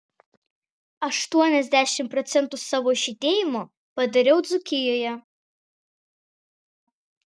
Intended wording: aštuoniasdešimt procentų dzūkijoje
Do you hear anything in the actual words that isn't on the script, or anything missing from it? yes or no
yes